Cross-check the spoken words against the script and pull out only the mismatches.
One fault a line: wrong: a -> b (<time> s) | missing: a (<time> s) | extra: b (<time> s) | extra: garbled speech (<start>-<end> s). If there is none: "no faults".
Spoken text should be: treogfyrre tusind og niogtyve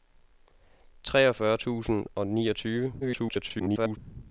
extra: garbled speech (3.0-4.0 s)